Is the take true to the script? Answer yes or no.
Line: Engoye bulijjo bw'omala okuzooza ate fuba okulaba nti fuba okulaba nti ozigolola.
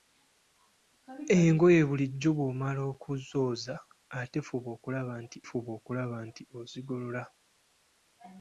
yes